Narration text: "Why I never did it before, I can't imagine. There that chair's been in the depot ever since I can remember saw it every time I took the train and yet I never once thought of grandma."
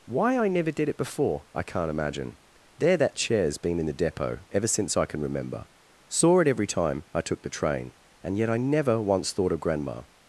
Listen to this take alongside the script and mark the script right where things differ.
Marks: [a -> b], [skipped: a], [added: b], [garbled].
"Why I never did it before, I can't imagine. There that chair's been in the depot ever since I can remember saw it every time I took the train and yet I never once thought of grandma."